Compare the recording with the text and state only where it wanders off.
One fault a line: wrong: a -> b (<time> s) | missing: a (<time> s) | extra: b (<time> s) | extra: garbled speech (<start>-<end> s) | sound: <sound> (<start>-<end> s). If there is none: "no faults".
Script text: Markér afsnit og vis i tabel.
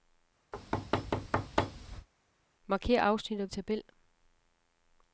sound: thud (0.5-2.1 s)
missing: vis (3.5 s)